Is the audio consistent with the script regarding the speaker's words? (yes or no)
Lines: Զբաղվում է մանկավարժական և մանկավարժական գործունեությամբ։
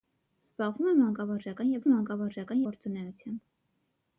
yes